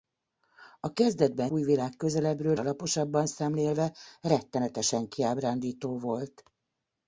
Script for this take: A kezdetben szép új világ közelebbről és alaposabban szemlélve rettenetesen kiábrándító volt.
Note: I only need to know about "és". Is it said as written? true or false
false